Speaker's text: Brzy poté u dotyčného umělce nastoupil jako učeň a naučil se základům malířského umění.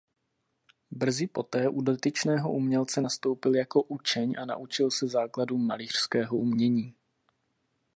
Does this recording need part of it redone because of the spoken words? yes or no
no